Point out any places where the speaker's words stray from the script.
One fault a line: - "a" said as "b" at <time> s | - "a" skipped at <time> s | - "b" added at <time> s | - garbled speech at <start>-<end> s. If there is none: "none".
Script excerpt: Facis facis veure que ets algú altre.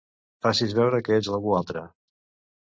- "facis" skipped at 0.7 s